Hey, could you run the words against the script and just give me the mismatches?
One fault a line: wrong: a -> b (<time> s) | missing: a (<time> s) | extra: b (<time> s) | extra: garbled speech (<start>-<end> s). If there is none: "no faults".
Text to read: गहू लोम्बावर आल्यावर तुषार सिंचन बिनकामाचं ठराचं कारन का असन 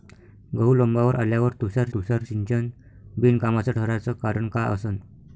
extra: तुषार (1.9 s)